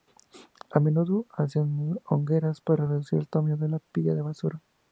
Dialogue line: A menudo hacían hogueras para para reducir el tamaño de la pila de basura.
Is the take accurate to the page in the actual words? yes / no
no